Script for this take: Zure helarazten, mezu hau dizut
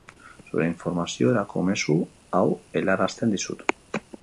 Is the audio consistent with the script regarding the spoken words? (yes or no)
no